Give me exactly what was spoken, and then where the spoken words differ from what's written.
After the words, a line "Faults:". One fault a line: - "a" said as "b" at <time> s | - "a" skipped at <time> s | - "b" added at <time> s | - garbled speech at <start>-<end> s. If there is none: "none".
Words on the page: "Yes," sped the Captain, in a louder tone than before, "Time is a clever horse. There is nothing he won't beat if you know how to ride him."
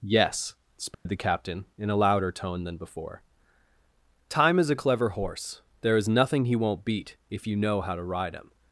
"Yes," sped the Captain, in a louder tone than before, "Time is a clever horse. There is nothing he won't beat if you know how to ride him."
Faults:
none